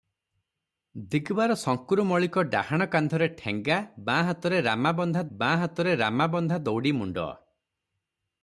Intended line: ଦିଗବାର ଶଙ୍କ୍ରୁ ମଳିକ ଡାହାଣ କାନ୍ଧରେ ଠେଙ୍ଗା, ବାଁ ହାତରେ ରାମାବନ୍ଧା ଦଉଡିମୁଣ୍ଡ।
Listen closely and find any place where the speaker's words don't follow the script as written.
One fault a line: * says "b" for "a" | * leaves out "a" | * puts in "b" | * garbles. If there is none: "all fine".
* puts in "ବାଁ ହାତରେ ରାମାବନ୍ଧା"